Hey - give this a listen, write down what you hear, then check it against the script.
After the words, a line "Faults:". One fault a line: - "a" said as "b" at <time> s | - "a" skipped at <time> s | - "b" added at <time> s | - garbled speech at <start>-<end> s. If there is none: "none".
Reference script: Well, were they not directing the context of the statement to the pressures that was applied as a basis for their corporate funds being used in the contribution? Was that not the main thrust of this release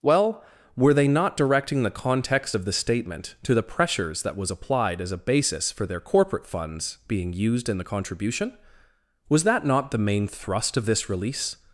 Well, were they not directing the context of the statement to the pressures that was applied as a basis for their corporate funds being used in the contribution? Was that not the main thrust of this release
Faults:
none